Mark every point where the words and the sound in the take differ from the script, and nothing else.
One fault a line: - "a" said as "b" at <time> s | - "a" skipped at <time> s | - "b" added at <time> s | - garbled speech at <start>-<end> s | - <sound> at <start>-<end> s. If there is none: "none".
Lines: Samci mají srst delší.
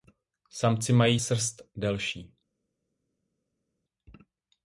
none